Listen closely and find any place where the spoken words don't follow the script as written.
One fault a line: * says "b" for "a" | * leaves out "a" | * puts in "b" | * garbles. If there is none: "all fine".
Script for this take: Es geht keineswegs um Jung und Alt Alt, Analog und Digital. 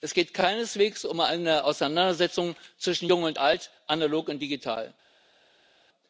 * puts in "eine Auseinandersetzung zwischen"
* leaves out "Alt"